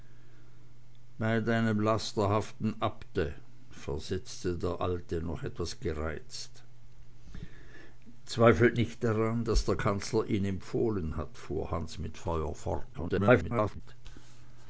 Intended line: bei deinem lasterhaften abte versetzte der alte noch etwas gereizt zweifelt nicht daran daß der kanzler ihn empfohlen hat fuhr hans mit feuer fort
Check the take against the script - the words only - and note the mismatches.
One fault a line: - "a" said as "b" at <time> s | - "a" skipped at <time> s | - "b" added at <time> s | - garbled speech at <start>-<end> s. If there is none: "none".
- garbled speech at 12.9-13.8 s